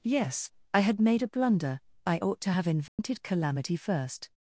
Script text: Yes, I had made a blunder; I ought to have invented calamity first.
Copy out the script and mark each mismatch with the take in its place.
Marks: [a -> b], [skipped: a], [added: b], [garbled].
Yes, I had made a blunder; I ought to have invented calamity first.